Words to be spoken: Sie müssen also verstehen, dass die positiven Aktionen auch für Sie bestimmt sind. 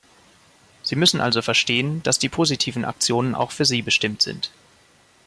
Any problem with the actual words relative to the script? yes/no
no